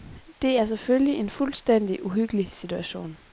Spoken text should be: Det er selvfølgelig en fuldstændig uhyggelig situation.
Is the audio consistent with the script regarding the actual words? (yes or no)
yes